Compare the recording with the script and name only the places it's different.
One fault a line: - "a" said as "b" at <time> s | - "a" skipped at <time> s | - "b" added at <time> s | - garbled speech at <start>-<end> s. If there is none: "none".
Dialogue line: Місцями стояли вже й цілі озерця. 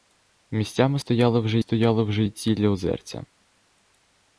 - "стояли вже" added at 1.6 s